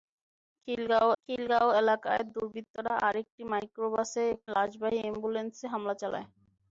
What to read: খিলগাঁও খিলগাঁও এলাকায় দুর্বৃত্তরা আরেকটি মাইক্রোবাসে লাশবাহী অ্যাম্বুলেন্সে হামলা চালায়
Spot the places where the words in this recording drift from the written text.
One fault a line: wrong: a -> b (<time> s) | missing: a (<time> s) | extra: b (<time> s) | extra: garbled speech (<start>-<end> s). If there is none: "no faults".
no faults